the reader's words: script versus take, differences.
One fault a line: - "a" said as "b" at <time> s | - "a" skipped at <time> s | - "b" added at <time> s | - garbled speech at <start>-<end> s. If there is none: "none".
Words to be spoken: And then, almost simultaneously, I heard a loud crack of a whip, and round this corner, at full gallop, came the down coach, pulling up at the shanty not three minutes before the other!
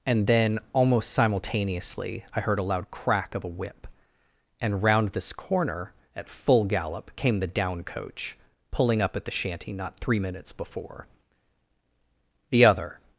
none